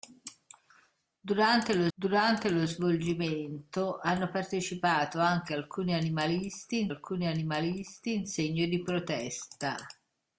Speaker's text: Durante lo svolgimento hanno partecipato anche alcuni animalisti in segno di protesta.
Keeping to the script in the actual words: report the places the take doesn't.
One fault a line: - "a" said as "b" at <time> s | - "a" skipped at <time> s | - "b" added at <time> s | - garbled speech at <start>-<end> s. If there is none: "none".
- "durante lo" added at 1.9 s
- "alcuni animalisti in" added at 6.9 s